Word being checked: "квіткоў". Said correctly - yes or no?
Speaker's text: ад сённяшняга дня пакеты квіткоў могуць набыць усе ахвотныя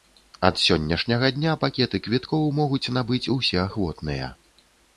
yes